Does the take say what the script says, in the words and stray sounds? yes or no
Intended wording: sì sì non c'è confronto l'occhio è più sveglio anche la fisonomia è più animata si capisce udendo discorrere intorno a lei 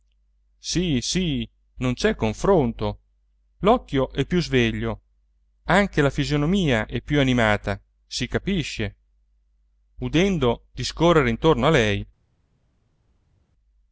yes